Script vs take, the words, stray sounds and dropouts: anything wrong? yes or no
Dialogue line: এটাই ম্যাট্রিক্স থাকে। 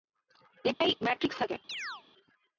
yes